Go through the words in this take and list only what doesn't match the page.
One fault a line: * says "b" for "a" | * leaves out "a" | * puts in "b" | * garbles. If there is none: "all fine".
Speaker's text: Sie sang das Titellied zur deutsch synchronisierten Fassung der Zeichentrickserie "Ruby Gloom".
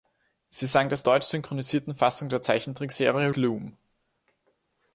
* leaves out "Titellied zur"
* leaves out "Ruby"